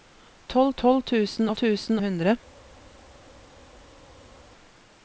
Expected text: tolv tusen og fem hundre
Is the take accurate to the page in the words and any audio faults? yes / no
no